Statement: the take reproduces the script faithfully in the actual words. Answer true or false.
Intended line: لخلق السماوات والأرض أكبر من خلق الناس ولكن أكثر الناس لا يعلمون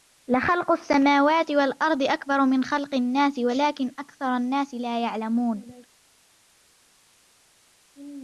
true